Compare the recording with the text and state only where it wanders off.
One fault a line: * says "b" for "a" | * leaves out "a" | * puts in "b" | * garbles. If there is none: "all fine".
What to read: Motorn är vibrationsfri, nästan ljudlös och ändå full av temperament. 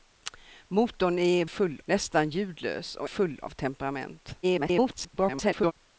* says "full" for "vibrationsfri"
* leaves out "ändå"
* garbles